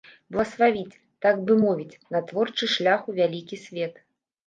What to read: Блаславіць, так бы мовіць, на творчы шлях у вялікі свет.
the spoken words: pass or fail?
pass